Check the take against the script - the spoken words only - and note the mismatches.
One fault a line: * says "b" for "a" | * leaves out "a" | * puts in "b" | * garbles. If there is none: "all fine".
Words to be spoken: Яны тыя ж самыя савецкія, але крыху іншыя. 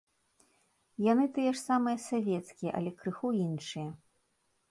all fine